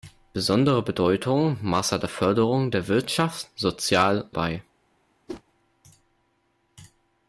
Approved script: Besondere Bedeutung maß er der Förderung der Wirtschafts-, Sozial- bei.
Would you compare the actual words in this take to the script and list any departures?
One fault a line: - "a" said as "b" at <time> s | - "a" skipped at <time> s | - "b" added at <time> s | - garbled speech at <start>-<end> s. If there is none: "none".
none